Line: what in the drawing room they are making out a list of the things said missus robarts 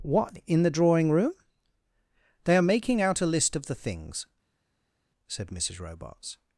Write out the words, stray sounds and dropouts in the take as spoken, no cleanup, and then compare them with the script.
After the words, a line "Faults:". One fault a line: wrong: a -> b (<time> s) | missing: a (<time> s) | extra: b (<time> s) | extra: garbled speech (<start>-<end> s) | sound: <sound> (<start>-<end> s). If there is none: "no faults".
what in the drawing room they are making out a list of the things said missus robarts
Faults:
no faults